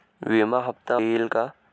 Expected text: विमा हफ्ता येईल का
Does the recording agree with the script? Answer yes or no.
yes